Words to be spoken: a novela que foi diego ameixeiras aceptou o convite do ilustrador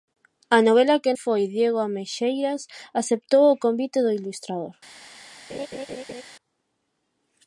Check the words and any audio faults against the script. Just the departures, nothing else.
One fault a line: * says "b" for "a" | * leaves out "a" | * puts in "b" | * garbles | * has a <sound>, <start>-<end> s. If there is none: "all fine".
* has a laugh, 5.5-6.2 s